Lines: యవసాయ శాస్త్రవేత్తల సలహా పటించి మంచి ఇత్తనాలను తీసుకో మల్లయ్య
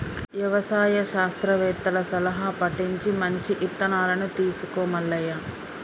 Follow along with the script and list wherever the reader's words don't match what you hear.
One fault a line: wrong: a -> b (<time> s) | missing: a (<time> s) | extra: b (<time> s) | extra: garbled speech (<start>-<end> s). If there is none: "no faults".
no faults